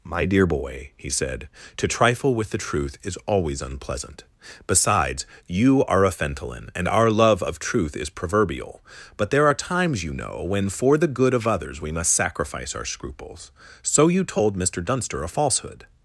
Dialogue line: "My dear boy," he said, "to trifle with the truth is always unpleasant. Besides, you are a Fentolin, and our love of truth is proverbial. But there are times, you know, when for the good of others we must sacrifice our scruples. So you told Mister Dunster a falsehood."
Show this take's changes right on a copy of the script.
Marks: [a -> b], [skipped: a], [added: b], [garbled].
"My dear boy," he said, "to trifle with the truth is always unpleasant. Besides, you are a Fentolin, and our love of truth is proverbial. But there are times, you know, when for the good of others we must sacrifice our scruples. So you told Mister Dunster a falsehood."